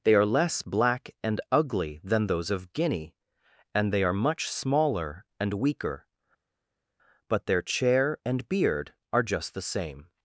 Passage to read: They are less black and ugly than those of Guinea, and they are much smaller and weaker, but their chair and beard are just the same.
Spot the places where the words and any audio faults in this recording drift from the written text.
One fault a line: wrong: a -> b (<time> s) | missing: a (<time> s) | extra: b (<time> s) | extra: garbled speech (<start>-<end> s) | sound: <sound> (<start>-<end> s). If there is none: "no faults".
no faults